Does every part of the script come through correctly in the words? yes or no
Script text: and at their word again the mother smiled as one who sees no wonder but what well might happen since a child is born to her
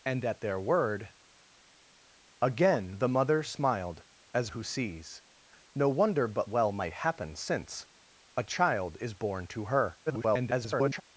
no